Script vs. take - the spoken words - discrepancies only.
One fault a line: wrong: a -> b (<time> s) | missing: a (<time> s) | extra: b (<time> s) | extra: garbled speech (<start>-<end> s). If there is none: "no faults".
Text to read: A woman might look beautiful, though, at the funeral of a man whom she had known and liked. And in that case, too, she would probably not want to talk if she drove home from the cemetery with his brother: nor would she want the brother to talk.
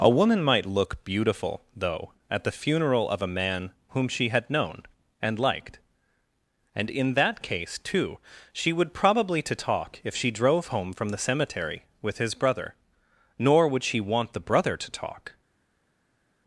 missing: not want (9.4 s)